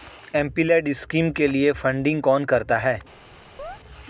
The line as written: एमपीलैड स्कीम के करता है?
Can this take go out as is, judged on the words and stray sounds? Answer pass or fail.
fail